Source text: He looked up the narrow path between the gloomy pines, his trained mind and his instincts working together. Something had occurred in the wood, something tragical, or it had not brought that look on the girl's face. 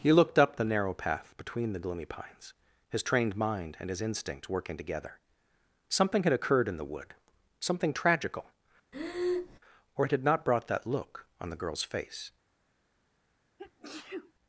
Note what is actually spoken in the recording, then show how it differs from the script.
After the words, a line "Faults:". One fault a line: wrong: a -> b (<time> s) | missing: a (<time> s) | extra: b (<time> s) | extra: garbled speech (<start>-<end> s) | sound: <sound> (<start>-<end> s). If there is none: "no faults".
He looked up the narrow path between the gloomy pines, his trained mind and his instinct working together. Something had occurred in the wood, something tragical, or it had not brought that look on the girl's face.
Faults:
wrong: instincts -> instinct (4.0 s)
sound: breath (8.9-9.6 s)
sound: sneeze (13.6-14.3 s)